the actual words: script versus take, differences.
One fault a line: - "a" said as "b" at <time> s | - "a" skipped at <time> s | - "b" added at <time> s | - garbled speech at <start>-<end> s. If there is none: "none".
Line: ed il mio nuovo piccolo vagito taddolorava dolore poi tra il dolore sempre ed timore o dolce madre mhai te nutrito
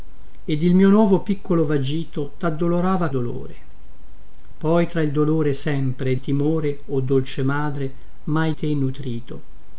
none